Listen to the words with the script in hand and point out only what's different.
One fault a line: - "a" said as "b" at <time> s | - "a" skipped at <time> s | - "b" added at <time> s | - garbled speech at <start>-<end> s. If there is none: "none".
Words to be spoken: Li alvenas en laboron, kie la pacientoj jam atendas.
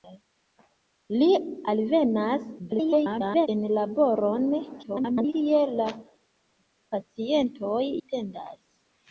- garbled speech at 2.6-3.5 s
- garbled speech at 4.8-5.3 s
- "jam" skipped at 7.8 s